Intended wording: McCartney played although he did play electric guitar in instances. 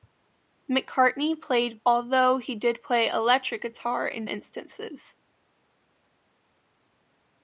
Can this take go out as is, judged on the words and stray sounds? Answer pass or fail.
pass